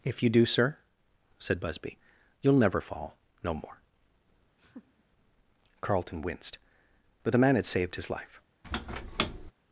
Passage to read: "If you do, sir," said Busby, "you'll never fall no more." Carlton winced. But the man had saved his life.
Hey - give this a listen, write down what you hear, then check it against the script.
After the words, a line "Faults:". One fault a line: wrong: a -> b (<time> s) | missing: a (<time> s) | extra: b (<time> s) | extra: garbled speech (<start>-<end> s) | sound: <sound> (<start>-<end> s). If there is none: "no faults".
"If you do, sir," said Busby, "you'll never fall no more." Carlton winced. But the man had saved his life.
Faults:
sound: laugh (4.6-5.0 s)
sound: squeak (8.6-9.5 s)